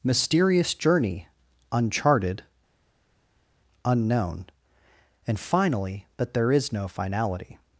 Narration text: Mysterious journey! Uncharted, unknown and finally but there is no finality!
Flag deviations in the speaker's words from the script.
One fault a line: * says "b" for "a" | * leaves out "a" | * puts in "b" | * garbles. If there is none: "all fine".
* says "that" for "but"